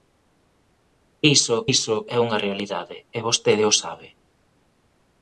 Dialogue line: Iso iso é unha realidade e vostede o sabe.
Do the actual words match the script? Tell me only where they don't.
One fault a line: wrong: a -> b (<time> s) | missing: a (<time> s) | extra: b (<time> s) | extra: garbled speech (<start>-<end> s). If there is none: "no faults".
no faults